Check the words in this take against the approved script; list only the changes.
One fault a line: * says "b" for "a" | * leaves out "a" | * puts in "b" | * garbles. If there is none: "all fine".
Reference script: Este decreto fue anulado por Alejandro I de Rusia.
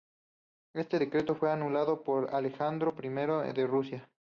all fine